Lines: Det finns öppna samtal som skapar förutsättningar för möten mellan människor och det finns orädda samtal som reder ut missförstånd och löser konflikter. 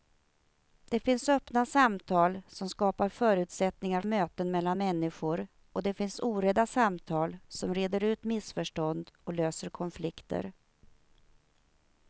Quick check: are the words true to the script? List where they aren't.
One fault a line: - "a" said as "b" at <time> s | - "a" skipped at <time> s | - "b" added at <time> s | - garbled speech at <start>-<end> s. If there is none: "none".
- "för" skipped at 4.0 s